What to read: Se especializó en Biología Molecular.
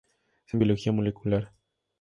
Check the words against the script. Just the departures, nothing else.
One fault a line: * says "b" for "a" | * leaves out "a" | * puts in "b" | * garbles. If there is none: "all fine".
* leaves out "especializó"